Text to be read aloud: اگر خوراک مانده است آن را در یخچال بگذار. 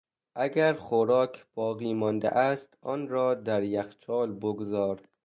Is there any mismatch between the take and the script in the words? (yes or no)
yes